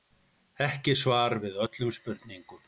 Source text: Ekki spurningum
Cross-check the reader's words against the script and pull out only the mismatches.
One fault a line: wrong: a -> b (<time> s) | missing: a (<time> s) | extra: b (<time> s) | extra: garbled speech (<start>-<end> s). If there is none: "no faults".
extra: svar við öllum (1.0 s)